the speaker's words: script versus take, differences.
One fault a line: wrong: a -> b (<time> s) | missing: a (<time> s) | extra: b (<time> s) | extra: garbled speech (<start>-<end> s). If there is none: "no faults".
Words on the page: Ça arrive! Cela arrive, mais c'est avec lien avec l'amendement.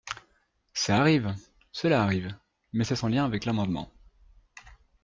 wrong: avec -> sans (2.9 s)